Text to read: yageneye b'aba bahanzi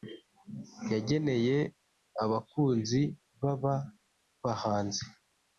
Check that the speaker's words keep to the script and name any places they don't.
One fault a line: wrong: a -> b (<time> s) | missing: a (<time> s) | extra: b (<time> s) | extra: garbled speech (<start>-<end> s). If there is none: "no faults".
extra: abakunzi (2.2 s)